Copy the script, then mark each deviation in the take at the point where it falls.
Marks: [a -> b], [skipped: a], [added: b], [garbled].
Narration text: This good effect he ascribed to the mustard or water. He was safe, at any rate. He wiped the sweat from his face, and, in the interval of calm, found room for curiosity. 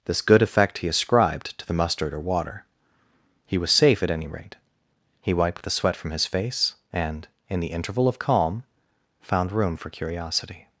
This good effect he ascribed to the mustard or water. He was safe, at any rate. He wiped the sweat from his face, and, in the interval of calm, found room for curiosity.